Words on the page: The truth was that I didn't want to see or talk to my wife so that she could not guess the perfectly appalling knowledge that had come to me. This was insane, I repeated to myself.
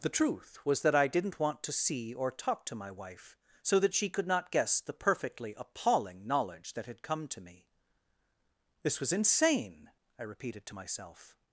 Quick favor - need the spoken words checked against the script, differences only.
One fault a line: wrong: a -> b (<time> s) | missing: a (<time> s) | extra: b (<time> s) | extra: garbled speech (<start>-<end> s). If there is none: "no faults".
no faults